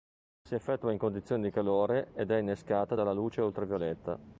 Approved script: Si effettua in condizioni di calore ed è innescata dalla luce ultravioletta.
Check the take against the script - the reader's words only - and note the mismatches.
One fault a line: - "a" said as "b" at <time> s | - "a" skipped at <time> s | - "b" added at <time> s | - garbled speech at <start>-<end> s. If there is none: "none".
none